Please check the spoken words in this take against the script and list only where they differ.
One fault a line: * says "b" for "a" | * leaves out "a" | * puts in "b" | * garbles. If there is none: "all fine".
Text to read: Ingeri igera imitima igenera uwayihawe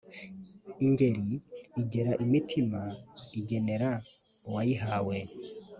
all fine